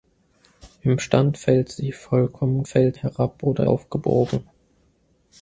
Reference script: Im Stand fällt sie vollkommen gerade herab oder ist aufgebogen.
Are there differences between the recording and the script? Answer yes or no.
yes